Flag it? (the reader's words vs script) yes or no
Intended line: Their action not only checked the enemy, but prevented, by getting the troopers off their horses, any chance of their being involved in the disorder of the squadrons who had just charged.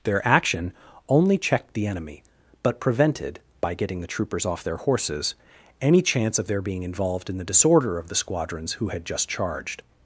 yes